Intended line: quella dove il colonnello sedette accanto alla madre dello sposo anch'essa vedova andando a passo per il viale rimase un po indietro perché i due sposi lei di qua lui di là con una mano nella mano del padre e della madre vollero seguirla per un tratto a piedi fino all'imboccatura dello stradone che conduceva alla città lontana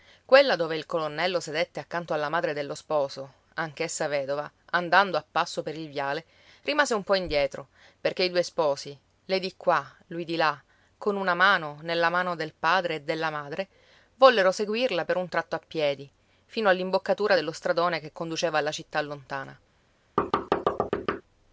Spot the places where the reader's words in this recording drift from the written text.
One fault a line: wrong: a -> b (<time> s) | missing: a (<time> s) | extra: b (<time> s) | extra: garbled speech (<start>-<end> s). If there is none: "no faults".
no faults